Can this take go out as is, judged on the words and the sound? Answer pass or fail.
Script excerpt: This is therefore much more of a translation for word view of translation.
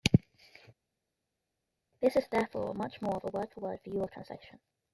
fail